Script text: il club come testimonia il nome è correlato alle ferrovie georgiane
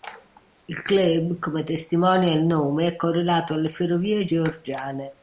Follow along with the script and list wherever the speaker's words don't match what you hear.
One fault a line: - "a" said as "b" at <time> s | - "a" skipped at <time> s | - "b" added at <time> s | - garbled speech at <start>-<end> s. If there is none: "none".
none